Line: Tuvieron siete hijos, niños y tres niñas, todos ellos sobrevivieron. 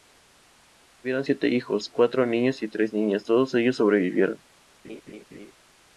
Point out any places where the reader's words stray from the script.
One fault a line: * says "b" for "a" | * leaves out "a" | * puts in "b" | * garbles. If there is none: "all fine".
* puts in "cuatro"